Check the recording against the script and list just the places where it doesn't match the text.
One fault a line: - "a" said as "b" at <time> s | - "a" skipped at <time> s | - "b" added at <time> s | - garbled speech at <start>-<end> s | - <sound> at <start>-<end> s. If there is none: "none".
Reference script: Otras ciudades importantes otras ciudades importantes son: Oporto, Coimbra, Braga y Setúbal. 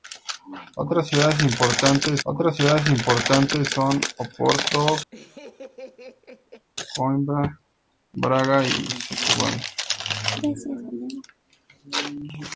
- laugh at 5.1-6.7 s